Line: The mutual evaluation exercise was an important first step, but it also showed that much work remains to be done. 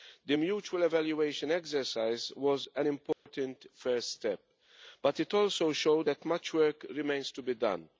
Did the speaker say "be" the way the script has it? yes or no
yes